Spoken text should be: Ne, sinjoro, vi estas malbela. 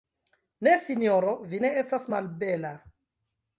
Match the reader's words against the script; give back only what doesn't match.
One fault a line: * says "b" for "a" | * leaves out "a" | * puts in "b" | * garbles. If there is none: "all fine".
* puts in "ne"